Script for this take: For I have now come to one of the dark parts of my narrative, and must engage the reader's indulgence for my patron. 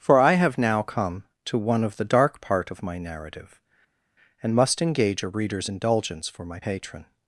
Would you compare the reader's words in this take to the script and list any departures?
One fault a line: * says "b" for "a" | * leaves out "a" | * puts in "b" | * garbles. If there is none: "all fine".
* says "part" for "parts"
* says "a" for "the"